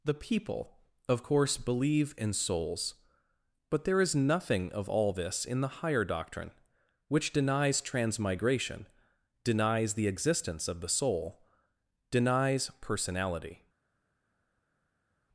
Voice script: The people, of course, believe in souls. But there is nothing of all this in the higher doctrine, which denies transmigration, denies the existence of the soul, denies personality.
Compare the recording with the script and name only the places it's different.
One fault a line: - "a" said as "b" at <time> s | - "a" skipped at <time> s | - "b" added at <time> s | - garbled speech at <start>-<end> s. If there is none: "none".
none